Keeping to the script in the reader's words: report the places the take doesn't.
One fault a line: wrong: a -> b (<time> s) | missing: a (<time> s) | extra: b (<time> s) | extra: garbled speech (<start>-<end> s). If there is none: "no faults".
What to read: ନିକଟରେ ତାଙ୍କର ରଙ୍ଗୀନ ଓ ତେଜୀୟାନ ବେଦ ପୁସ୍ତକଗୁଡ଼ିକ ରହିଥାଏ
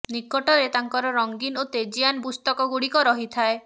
missing: ବେଦ (2.2 s)